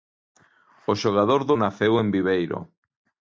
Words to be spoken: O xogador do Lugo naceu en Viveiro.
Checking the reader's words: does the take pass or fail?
fail